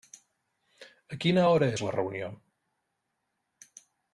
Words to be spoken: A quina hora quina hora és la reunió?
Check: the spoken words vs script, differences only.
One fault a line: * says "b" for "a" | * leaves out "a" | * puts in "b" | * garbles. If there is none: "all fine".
* leaves out "quina hora"